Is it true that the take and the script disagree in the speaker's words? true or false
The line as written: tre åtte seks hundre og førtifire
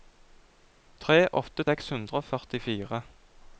false